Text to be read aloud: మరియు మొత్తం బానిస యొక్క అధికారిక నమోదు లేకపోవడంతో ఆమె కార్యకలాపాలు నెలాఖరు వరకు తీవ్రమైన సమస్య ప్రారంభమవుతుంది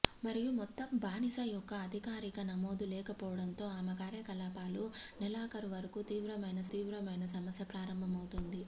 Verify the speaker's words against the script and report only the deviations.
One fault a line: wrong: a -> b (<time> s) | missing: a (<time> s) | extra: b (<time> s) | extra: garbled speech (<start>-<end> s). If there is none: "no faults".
extra: తీవ్రమైన (6.7 s)